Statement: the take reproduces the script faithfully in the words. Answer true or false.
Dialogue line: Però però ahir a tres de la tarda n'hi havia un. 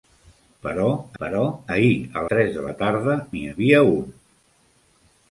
true